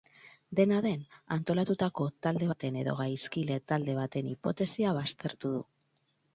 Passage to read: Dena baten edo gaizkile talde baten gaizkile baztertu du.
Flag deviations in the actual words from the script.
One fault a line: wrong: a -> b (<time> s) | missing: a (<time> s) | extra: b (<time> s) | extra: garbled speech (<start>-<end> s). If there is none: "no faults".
extra: den antolatutako talde (0.8 s)
wrong: gaizkile -> hipotesia (4.3 s)